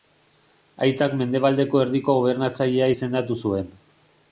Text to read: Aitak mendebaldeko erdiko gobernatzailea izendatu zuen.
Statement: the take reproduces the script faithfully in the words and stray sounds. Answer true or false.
true